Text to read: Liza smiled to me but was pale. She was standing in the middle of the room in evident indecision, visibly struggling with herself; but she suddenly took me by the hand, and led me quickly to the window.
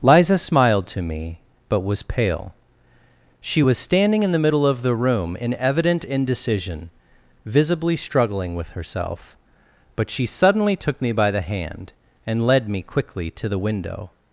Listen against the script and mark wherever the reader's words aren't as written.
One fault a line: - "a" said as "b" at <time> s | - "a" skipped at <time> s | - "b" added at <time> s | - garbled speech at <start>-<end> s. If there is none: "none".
none